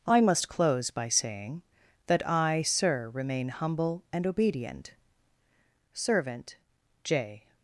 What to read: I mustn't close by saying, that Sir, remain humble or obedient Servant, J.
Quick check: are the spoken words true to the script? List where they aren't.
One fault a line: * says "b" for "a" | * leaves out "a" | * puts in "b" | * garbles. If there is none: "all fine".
* says "must" for "mustn't"
* puts in "I"
* says "and" for "or"